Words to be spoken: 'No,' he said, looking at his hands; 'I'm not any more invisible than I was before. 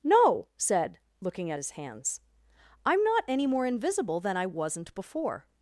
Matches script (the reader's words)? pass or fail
fail